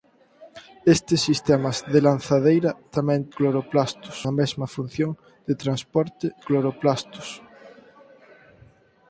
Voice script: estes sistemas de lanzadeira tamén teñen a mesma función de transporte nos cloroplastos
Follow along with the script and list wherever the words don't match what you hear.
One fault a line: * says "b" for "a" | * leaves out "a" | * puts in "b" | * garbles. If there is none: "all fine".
* says "cloroplastos" for "teñen"
* leaves out "nos"